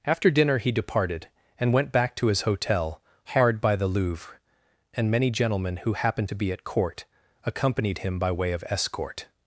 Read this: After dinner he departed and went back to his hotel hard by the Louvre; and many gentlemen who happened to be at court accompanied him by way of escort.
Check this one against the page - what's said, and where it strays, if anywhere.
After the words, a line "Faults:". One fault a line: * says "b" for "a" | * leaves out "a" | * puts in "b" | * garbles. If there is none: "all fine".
After dinner he departed and went back to his hotel hard by the Louvre; and many gentlemen who happened to be at court accompanied him by way of escort.
Faults:
all fine